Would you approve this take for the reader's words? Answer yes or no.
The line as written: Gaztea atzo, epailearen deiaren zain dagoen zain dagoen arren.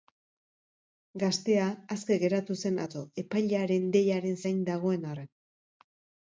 no